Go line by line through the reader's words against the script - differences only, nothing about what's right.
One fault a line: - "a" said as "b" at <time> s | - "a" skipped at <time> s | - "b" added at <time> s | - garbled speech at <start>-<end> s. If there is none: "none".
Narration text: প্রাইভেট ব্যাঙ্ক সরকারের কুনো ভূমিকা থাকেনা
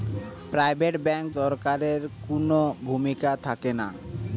none